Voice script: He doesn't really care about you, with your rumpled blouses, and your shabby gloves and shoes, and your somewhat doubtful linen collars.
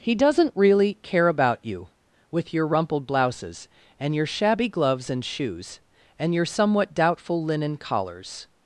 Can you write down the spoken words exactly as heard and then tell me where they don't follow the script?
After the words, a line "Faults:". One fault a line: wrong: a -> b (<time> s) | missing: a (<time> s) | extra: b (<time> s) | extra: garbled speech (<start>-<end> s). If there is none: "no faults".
He doesn't really care about you, with your rumpled blouses, and your shabby gloves and shoes, and your somewhat doubtful linen collars.
Faults:
no faults